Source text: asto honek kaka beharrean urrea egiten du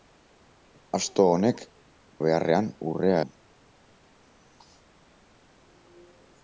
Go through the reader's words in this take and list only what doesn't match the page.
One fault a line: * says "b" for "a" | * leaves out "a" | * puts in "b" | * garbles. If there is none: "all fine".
* leaves out "kaka"
* leaves out "egiten"